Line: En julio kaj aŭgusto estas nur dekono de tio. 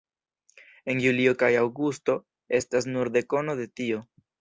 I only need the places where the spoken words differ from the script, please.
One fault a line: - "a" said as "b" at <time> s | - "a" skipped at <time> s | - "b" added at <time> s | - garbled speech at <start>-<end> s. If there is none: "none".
none